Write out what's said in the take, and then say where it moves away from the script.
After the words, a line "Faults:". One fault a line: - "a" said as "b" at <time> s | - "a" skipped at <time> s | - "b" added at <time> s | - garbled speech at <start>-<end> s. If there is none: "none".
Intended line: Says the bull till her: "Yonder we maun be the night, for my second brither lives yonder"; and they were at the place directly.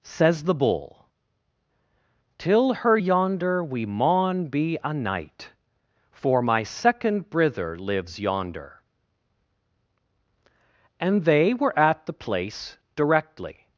Says the bull till her: "Yonder we maun be a night, for my second brither lives yonder"; and they were at the place directly.
Faults:
- "the" said as "a" at 4.8 s